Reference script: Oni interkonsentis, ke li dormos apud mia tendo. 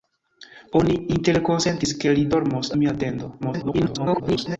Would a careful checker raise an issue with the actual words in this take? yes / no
yes